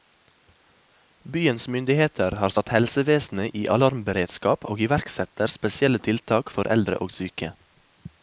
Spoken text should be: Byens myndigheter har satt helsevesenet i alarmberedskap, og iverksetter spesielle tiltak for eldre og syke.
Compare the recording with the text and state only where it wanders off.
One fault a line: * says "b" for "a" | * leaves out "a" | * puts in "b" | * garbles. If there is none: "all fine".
all fine